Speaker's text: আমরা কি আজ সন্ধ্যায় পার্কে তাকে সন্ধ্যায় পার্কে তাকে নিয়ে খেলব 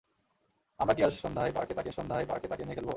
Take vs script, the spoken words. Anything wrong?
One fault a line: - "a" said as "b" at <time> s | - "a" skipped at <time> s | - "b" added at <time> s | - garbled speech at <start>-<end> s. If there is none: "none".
none